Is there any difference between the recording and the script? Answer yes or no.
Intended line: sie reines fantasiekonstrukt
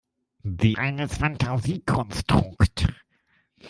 no